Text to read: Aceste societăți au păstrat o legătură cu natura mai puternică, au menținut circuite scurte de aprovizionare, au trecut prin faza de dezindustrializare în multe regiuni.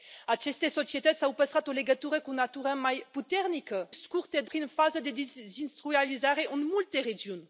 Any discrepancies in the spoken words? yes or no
yes